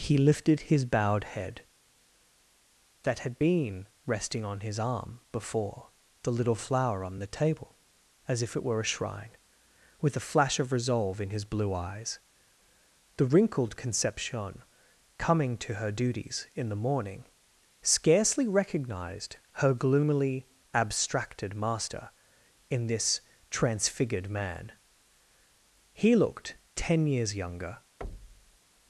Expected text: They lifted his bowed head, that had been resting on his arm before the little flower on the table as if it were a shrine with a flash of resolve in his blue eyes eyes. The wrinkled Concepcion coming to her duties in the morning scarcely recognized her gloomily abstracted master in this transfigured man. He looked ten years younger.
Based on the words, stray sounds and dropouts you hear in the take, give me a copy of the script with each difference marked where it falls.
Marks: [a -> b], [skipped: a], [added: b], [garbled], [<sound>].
[They -> He] lifted his bowed head, that had been resting on his arm before the little flower on the table as if it were a shrine with a flash of resolve in his blue eyes [skipped: eyes.] The wrinkled Concepcion coming to her duties in the morning scarcely recognized her gloomily abstracted master in this transfigured man. He looked ten years younger. [thud]